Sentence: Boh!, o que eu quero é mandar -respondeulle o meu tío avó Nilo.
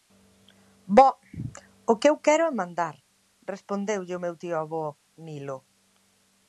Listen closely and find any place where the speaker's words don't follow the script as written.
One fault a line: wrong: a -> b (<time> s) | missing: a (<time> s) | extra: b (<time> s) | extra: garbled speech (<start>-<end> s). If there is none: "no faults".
no faults